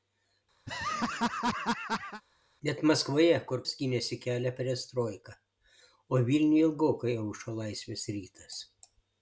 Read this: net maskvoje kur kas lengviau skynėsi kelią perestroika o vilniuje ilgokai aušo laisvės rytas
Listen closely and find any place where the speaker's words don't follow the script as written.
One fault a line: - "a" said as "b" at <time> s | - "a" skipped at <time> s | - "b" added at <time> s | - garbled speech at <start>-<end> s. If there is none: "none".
- "kas lengviau" skipped at 3.6 s